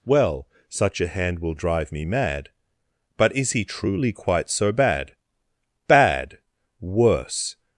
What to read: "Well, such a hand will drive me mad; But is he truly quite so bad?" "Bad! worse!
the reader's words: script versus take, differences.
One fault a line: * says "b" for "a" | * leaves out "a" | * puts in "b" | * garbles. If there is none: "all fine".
all fine